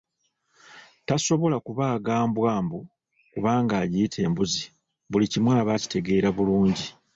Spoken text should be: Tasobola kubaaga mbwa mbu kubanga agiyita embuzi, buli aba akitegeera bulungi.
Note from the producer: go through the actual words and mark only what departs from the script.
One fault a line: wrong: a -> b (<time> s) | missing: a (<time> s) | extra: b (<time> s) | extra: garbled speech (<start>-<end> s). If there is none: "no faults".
extra: kimu (5.3 s)